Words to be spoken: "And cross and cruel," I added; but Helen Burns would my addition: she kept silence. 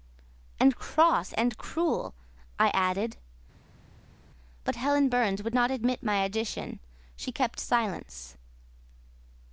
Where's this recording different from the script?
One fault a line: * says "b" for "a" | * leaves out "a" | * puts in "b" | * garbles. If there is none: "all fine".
* puts in "not admit"